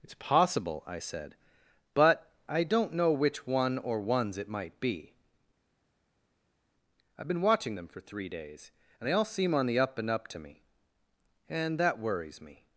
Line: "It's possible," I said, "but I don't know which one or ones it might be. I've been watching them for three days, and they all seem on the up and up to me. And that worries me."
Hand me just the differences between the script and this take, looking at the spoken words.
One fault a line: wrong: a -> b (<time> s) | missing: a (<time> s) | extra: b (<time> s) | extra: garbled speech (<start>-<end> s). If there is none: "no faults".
no faults